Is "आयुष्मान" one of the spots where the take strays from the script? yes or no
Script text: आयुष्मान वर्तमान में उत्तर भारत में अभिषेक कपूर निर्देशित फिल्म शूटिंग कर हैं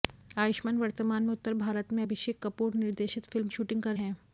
no